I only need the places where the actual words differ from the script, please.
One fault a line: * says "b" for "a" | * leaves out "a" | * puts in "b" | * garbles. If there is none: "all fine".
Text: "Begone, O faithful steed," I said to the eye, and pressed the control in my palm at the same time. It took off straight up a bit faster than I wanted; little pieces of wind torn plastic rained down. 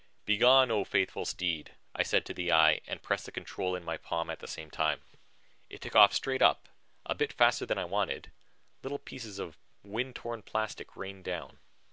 all fine